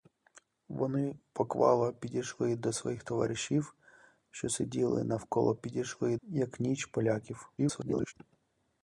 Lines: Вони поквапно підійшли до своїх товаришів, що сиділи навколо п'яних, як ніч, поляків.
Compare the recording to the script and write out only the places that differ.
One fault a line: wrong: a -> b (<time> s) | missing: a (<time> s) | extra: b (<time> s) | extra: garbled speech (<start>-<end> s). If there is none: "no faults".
wrong: п'яних -> підійшли (5.5 s)
extra: garbled speech (7.6-8.1 s)